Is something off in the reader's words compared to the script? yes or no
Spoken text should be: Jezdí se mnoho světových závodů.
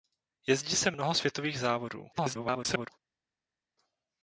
yes